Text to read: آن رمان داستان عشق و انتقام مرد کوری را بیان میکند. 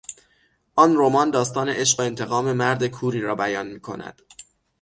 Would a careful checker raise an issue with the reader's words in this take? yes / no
no